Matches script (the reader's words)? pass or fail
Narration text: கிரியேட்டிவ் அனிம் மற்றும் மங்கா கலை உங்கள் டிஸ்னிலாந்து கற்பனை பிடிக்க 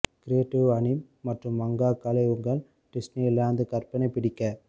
pass